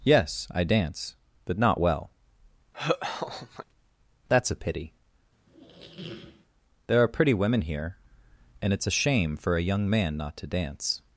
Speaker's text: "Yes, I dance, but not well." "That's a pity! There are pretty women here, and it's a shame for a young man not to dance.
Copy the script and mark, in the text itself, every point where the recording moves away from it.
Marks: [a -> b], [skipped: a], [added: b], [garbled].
"Yes, I dance, but not well." "That's a pity! There are pretty women here, and it's a shame for a young man not to dance.